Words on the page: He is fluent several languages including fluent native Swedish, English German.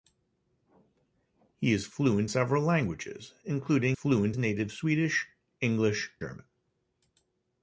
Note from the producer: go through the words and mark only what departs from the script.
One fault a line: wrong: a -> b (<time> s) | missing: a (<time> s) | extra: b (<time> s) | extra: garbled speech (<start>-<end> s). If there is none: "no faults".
no faults